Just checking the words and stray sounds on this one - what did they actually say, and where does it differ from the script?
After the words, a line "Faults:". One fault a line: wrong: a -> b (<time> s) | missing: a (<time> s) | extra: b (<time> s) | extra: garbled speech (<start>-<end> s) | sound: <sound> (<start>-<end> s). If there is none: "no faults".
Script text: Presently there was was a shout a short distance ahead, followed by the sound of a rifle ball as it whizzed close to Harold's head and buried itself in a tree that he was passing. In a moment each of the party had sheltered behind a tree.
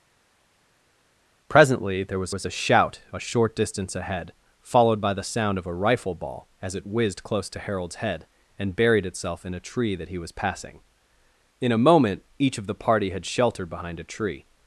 Presently there was was a shout a short distance ahead, followed by the sound of a rifle ball as it whizzed close to Harold's head and buried itself in a tree that he was passing. In a moment each of the party had sheltered behind a tree.
Faults:
no faults